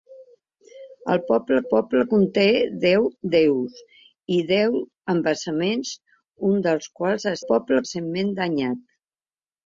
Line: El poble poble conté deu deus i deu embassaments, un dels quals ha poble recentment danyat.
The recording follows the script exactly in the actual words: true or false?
true